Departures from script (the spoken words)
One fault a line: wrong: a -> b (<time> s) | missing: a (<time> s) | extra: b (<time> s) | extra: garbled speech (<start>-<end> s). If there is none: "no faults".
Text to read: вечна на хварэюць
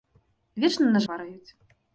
no faults